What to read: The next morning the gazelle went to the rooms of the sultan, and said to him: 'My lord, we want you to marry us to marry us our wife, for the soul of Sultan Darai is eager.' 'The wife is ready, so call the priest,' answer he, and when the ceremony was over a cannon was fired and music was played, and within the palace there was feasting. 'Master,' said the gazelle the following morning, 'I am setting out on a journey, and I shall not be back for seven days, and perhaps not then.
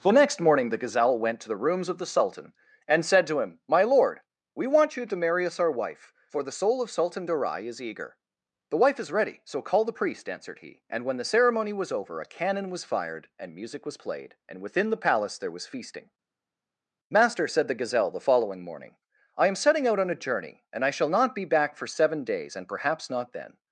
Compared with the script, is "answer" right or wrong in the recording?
wrong